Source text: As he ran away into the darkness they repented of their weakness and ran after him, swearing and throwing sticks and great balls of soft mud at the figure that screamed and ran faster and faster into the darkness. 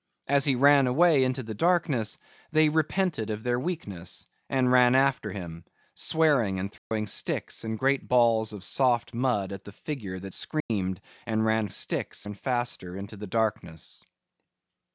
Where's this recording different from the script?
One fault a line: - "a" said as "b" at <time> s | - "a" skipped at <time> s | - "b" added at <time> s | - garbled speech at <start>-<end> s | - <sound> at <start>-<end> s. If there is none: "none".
- dropout at 6.8-6.9 s
- dropout at 10.6-10.7 s
- "faster" said as "sticks" at 11.7 s